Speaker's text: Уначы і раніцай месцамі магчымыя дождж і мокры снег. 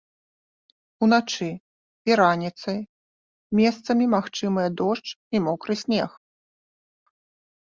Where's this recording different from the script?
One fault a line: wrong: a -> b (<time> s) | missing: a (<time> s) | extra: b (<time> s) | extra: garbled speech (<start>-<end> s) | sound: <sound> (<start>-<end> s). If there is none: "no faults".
no faults